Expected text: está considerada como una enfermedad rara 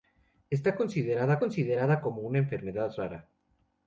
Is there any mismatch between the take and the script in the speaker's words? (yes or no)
yes